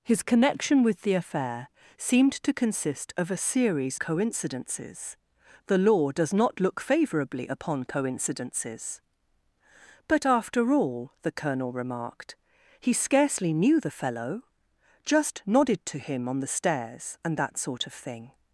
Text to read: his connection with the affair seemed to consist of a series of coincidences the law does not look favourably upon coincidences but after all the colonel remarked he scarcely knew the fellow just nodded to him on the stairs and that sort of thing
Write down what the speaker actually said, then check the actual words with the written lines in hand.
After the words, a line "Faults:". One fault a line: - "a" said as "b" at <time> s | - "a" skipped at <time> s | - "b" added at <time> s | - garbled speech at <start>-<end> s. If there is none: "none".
his connection with the affair seemed to consist of a series coincidences the law does not look favourably upon coincidences but after all the colonel remarked he scarcely knew the fellow just nodded to him on the stairs and that sort of thing
Faults:
- "of" skipped at 4.0 s